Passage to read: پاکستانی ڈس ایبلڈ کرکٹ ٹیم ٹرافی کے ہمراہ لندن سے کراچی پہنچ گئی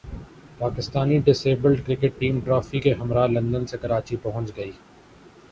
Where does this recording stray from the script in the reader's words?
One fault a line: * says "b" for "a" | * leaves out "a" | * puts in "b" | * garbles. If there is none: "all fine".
all fine